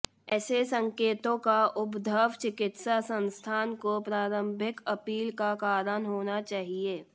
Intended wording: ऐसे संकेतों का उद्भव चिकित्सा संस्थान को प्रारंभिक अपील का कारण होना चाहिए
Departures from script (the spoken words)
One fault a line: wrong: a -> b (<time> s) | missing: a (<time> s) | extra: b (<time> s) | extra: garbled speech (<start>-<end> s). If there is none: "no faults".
no faults